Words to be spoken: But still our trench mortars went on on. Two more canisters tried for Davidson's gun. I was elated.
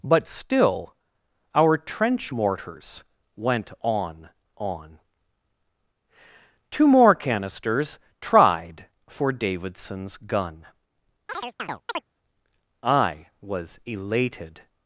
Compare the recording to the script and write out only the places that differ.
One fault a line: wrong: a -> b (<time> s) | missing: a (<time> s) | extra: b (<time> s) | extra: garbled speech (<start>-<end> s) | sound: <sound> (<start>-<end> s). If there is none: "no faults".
sound: chirp (11.3-12.1 s)